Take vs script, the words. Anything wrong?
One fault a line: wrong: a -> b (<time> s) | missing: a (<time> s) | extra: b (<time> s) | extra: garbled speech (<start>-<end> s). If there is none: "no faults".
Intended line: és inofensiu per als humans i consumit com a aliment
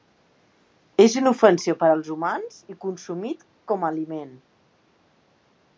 no faults